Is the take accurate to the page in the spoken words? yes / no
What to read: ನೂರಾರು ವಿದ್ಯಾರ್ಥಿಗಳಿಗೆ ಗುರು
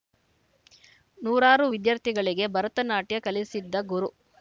no